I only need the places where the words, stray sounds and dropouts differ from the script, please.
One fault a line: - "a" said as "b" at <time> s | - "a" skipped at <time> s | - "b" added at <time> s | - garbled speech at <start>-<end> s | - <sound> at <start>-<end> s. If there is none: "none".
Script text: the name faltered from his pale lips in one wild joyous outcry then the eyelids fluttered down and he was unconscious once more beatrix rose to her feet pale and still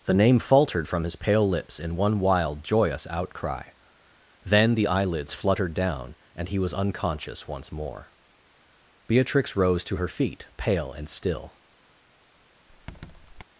- squeak at 12.7-13.4 s